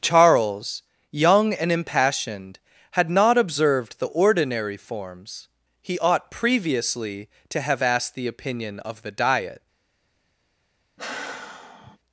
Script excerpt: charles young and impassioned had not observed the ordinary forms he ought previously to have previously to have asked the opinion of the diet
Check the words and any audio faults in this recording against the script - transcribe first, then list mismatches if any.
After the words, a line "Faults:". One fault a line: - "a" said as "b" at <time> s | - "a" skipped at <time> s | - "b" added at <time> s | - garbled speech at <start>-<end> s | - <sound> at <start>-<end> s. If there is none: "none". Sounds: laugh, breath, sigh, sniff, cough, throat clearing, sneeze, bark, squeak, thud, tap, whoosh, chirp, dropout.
charles young and impassioned had not observed the ordinary forms he ought previously to have asked the opinion of the diet
Faults:
- "previously to have" skipped at 7.8 s
- sigh at 11.0-12.0 s